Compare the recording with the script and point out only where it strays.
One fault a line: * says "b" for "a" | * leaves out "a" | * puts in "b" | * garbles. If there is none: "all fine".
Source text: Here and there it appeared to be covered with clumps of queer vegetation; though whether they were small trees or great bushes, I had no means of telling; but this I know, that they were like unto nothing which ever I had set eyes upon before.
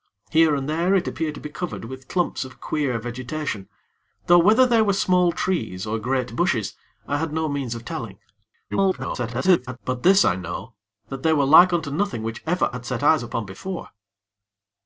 * garbles
* leaves out "I"